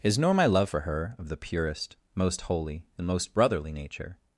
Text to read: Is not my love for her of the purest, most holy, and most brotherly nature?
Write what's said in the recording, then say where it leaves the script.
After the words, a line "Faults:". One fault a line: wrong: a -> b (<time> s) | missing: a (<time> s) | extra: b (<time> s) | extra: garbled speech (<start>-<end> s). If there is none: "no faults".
Is nor my love for her of the purest, most holy, and most brotherly nature?
Faults:
wrong: not -> nor (0.2 s)